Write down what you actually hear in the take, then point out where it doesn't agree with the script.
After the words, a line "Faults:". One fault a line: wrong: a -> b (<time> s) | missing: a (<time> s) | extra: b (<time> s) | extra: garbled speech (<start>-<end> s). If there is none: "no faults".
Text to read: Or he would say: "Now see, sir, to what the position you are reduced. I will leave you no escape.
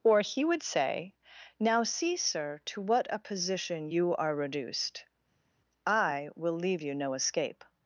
Or he would say: "Now see, sir, to what a position you are reduced. I will leave you no escape.
Faults:
wrong: the -> a (3.1 s)